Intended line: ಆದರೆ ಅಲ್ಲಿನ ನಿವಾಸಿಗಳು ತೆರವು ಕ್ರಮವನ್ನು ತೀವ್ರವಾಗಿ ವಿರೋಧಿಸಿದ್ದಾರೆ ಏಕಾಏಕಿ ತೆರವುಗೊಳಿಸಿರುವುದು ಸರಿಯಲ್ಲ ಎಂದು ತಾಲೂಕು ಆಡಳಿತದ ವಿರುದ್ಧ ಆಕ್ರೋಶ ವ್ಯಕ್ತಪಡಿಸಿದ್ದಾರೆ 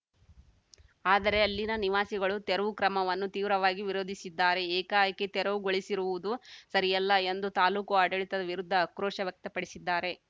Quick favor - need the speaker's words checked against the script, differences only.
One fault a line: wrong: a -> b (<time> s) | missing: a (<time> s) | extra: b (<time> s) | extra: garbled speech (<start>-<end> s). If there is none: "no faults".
no faults